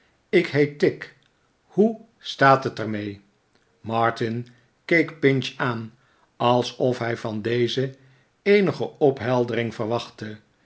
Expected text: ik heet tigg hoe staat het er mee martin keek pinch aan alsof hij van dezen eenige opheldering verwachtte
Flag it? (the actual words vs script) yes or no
no